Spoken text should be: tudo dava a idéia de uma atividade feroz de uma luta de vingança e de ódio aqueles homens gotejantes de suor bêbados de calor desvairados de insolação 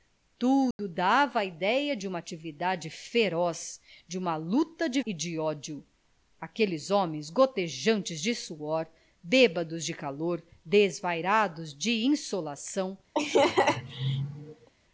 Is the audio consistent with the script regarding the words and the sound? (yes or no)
no